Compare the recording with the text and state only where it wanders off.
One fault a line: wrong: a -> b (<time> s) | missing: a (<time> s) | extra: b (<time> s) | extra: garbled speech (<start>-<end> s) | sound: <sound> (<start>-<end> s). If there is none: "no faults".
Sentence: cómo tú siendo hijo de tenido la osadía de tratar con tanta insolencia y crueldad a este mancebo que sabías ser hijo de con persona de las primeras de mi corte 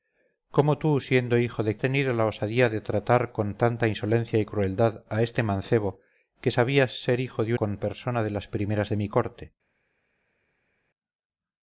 no faults